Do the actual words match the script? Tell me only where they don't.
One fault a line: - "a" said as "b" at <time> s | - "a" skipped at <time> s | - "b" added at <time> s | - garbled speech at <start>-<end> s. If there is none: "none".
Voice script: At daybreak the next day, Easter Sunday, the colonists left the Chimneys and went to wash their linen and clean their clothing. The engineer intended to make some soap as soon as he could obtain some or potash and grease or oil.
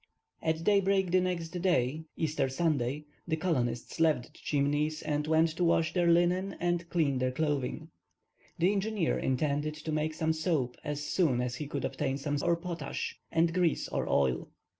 none